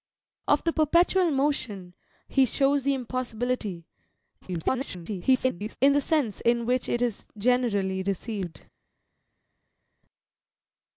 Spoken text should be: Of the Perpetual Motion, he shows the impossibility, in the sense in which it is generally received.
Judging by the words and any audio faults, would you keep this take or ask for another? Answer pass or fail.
fail